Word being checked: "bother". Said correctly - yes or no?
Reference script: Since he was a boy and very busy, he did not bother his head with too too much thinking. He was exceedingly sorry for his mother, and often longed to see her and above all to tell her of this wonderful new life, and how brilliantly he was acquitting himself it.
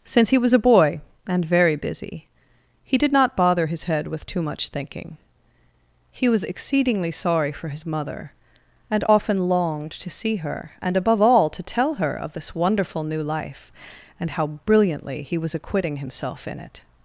yes